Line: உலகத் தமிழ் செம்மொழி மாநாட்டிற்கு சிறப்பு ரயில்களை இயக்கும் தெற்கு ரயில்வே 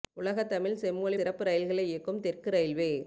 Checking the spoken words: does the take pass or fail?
fail